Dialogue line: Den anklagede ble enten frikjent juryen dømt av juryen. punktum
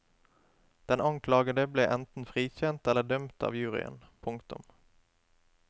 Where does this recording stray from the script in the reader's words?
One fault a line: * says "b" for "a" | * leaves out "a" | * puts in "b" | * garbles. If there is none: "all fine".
* says "eller" for "juryen"